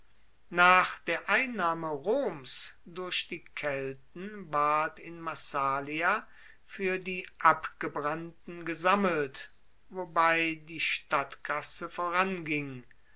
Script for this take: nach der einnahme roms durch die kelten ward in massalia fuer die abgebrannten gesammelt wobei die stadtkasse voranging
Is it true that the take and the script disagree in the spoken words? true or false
false